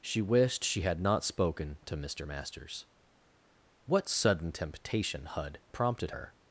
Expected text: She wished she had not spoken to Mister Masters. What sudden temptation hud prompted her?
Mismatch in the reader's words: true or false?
false